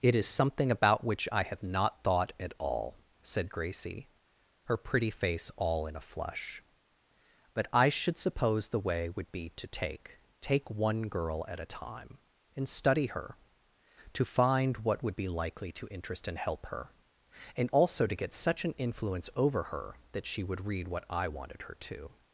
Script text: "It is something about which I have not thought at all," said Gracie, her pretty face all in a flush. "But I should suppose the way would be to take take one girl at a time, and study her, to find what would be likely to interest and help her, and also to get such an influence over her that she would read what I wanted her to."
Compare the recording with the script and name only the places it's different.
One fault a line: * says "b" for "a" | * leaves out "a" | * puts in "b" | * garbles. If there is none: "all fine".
all fine